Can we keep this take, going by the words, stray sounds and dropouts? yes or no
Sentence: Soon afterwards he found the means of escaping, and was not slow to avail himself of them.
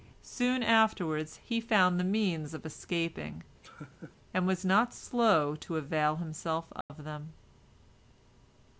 no